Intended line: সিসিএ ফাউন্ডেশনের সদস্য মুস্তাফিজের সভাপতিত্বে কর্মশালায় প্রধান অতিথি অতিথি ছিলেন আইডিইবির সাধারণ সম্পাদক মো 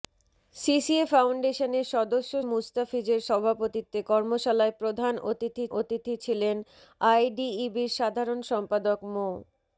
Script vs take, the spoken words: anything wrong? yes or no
no